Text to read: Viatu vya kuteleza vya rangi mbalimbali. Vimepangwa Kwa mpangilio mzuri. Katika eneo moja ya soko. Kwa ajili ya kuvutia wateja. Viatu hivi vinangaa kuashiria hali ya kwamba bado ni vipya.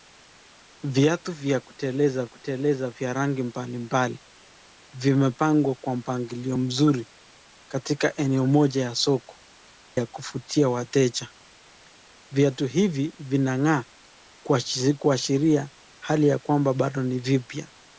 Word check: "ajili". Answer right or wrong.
wrong